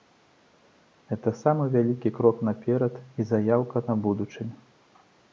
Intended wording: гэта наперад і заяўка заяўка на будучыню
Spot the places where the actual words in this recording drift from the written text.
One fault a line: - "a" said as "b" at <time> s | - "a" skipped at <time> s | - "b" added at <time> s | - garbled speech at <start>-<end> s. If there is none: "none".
- "самы вялікі крок" added at 1.4 s
- "заяўка" skipped at 3.8 s